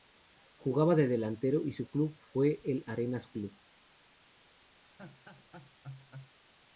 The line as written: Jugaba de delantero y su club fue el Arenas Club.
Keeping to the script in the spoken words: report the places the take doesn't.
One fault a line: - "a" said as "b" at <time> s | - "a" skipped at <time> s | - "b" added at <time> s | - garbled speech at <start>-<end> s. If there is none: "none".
none